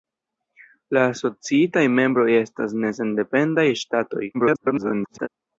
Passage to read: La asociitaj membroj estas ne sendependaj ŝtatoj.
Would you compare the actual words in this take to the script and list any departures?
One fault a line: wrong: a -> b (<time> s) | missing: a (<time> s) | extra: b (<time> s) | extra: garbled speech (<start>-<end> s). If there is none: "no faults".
extra: garbled speech (4.3-5.3 s)